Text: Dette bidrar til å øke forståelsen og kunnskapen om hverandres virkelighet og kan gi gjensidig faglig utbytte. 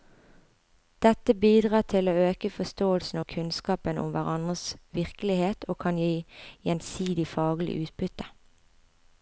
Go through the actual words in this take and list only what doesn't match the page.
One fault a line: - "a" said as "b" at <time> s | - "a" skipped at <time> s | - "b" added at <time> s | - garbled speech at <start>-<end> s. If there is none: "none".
none